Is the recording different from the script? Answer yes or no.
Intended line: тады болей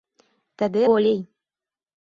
no